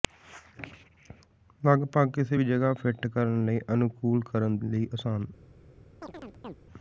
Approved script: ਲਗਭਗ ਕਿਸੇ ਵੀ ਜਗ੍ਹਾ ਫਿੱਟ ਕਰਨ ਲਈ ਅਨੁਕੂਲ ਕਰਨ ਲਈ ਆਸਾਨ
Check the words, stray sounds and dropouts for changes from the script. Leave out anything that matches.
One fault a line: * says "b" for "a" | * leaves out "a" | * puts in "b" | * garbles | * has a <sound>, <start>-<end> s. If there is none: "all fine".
* has a chirp, 6.0-6.6 s